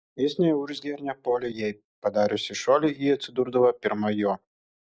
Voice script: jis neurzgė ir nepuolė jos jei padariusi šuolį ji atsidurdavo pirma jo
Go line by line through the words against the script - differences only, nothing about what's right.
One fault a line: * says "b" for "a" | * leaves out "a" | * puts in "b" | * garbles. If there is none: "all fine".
* leaves out "jos"